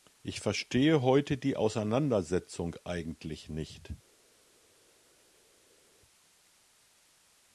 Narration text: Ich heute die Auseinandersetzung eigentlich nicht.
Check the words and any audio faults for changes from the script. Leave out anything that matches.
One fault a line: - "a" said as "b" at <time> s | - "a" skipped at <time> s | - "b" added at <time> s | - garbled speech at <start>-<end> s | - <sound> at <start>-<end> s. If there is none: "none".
- "verstehe" added at 0.4 s